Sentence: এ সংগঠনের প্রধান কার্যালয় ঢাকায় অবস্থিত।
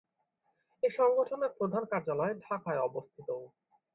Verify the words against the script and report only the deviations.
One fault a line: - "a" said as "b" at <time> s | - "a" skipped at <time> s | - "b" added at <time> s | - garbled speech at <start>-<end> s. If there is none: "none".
none